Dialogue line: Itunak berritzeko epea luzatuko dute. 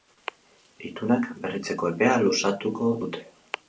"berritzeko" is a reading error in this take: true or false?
false